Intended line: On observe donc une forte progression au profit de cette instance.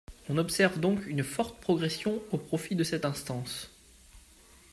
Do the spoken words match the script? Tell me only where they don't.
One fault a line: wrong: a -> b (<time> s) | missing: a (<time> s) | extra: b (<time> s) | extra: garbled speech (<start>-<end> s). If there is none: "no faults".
no faults